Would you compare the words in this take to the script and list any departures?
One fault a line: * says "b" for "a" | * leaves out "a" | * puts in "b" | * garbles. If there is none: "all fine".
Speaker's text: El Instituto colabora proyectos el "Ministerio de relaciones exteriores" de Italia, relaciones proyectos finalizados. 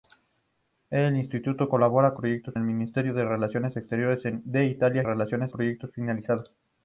all fine